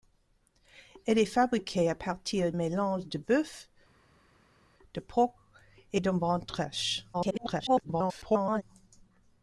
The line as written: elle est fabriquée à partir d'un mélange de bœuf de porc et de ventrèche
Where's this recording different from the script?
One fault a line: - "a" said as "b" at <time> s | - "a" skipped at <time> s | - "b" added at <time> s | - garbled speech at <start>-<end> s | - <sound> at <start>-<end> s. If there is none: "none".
- "d'un" skipped at 2.5 s
- garbled speech at 7.1-8.6 s